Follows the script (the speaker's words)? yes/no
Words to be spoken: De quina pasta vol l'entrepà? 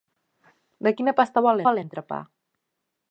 no